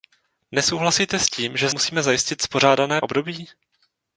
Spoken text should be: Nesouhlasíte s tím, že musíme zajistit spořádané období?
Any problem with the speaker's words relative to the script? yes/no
no